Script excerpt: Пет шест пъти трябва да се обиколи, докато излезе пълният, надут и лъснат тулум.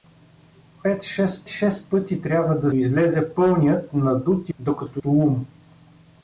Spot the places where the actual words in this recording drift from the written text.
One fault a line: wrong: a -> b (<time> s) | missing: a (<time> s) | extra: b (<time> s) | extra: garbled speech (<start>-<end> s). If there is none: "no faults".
extra: шест (1.5 s)
missing: се обиколи докато (2.7 s)
wrong: лъснат -> докато (4.6 s)